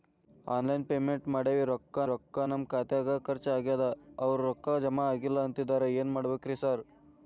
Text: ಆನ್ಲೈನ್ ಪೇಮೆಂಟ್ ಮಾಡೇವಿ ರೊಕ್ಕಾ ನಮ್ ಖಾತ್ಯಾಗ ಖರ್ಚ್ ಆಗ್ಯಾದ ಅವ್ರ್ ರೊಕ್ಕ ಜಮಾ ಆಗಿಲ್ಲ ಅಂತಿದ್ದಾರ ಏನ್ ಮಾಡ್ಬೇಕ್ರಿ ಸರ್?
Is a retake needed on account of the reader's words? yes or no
yes